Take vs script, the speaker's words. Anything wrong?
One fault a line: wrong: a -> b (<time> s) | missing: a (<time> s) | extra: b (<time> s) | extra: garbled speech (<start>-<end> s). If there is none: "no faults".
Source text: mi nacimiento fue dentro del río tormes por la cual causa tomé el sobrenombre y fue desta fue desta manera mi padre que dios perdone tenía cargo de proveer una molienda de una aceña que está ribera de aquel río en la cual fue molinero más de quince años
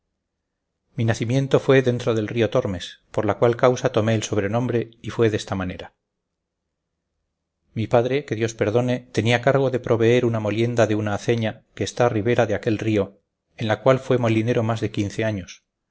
missing: fue desta (5.5 s)